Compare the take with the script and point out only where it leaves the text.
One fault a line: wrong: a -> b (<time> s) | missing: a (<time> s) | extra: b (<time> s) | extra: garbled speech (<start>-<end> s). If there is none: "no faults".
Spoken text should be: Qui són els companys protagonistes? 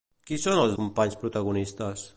no faults